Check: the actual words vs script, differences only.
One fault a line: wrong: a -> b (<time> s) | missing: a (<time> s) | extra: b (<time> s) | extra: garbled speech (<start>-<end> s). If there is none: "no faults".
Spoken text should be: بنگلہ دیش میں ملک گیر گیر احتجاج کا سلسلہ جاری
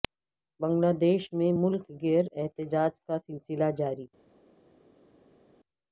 missing: گیر (2.2 s)